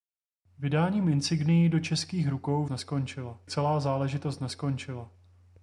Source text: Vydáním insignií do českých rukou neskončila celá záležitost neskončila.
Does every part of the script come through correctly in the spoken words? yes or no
yes